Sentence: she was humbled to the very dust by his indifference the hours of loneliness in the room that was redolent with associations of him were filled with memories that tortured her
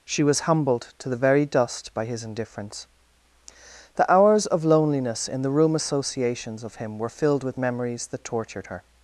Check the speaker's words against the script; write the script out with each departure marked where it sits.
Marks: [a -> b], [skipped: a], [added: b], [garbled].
she was humbled to the very dust by his indifference the hours of loneliness in the room [skipped: that was redolent with] associations of him were filled with memories that tortured her